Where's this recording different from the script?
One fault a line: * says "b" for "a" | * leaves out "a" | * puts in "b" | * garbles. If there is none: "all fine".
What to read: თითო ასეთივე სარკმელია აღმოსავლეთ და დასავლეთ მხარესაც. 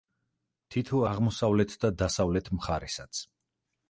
* leaves out "ასეთივე სარკმელია"